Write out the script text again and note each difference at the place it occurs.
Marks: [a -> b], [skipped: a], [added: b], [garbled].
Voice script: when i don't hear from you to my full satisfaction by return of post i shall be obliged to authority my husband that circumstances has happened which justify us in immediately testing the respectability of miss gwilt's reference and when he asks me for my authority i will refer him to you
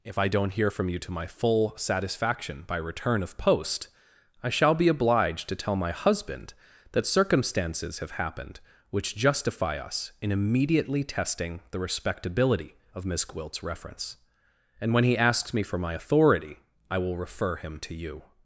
[when -> if] i don't hear from you to my full satisfaction by return of post i shall be obliged to [authority -> tell] my husband that circumstances [has -> have] happened which justify us in immediately testing the respectability of miss gwilt's reference and when he asks me for my authority i will refer him to you